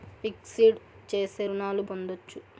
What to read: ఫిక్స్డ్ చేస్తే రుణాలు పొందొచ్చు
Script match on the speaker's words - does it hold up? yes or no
yes